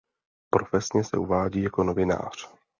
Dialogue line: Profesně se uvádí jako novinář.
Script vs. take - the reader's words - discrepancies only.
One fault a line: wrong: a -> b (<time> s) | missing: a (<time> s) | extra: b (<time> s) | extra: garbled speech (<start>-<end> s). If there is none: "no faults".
no faults